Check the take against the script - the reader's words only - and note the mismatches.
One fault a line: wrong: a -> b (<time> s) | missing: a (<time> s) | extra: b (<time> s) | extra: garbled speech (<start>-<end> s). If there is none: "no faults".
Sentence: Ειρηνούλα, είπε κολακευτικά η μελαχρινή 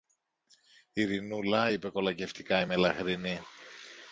no faults